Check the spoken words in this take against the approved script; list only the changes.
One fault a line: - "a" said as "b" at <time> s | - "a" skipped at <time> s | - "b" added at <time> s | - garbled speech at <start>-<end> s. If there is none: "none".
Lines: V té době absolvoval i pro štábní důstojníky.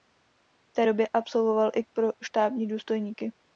none